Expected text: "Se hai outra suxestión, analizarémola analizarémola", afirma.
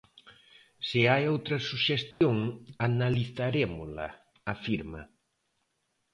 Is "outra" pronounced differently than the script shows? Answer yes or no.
no